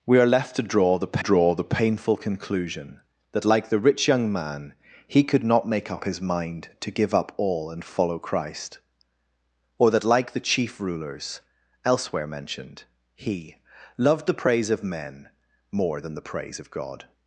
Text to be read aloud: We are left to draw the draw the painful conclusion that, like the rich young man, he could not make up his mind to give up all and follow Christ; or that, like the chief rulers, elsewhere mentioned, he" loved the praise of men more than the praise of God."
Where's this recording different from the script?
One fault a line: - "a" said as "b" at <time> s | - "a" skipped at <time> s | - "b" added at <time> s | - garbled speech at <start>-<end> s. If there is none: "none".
none